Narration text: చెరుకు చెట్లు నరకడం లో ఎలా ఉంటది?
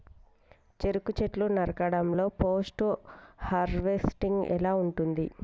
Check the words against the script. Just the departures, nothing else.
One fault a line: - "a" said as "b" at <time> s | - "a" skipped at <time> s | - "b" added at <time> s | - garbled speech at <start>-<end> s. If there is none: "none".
- "పోస్ట్ హార్వెస్టింగ్" added at 2.4 s